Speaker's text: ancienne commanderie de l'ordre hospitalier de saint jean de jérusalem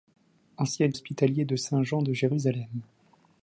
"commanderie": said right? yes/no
no